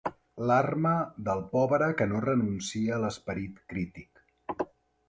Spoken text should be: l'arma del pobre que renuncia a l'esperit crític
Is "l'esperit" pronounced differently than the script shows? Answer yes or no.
no